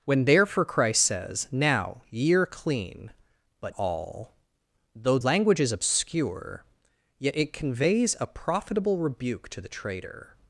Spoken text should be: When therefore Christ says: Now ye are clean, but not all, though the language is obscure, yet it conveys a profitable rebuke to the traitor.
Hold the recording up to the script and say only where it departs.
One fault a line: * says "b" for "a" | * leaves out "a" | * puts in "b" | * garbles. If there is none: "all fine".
* leaves out "not"
* leaves out "the"